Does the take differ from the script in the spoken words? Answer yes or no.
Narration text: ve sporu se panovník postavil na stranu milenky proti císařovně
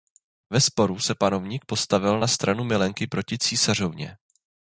no